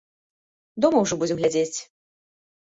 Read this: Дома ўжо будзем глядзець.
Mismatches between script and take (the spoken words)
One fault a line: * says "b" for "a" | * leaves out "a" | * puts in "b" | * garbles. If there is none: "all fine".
all fine